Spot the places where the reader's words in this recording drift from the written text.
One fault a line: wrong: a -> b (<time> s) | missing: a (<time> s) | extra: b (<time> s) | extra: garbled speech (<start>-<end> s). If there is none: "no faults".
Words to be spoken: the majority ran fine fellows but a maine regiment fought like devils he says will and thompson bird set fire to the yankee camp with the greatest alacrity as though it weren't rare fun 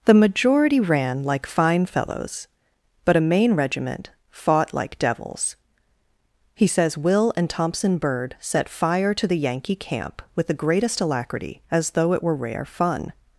extra: like (1.2 s)
wrong: weren't -> were (12.2 s)